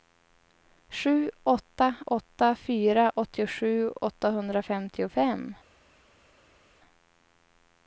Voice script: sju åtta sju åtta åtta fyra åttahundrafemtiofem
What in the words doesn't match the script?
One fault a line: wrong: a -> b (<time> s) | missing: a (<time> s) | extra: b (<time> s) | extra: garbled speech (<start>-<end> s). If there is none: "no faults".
missing: sju (1.9 s)
wrong: åtta fyra -> fyra åttiosju (2.5 s)